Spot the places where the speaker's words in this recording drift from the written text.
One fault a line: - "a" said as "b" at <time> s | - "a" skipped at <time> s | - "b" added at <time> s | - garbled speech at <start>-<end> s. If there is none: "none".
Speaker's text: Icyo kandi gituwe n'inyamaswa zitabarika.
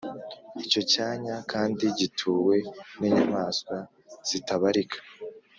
- "cyanya" added at 0.9 s